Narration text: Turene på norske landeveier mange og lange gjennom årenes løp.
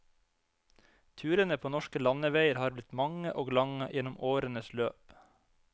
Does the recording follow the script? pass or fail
fail